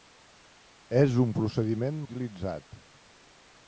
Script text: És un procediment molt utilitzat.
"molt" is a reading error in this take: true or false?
true